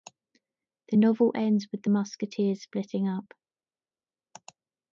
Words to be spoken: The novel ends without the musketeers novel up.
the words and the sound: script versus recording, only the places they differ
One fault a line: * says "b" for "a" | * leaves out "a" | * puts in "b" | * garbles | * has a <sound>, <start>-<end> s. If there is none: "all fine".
* says "with" for "without"
* says "splitting" for "novel"